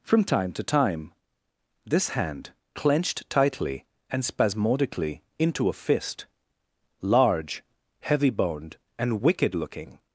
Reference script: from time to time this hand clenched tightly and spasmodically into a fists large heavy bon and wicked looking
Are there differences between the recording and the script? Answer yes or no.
yes